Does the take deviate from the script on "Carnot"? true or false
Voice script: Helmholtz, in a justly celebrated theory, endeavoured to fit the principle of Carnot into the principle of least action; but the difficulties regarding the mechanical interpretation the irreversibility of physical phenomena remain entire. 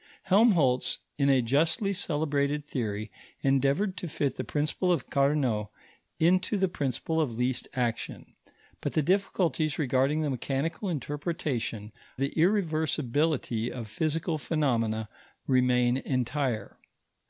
false